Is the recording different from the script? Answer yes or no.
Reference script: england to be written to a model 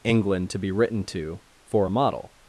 yes